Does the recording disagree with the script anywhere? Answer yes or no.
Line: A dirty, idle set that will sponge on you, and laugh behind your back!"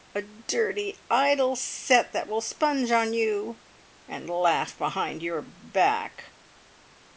no